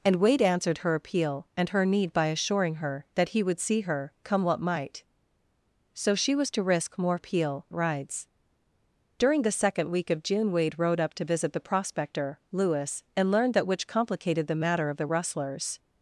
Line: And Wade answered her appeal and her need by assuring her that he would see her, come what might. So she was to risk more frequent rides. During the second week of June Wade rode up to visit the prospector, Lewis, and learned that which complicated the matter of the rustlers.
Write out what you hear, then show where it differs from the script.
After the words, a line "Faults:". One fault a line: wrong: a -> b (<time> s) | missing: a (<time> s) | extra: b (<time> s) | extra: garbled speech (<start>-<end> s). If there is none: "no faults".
And Wade answered her appeal and her need by assuring her that he would see her, come what might. So she was to risk more appeal rides. During the second week of June Wade rode up to visit the prospector, Lewis, and learned that which complicated the matter of the rustlers.
Faults:
wrong: frequent -> appeal (7.1 s)